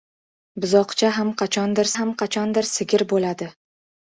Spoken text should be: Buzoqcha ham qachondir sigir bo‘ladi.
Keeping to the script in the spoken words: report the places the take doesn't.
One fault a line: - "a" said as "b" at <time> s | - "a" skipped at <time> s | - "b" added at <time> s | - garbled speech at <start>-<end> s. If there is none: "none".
- "ham qachondir" added at 2.0 s